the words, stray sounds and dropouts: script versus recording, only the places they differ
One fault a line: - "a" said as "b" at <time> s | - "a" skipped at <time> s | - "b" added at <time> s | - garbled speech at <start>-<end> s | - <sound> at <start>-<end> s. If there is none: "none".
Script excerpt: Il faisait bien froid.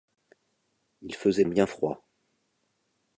none